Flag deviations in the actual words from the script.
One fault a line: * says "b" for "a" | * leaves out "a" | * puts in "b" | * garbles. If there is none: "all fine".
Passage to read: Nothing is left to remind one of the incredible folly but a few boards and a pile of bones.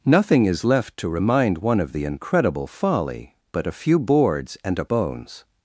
* leaves out "pile of"